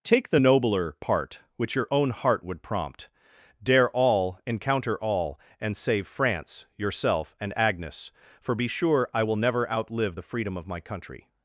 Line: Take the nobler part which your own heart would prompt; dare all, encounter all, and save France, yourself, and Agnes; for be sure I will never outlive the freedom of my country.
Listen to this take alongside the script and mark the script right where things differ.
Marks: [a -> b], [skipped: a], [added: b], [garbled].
Take the nobler part which your own heart would prompt; dare all, encounter all, and save France, yourself, and Agnes; for be sure I will never outlive the freedom of my country.